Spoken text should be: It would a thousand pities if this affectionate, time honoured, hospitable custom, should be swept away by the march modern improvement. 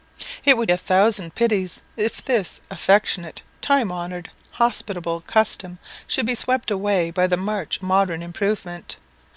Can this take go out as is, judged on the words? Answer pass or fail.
pass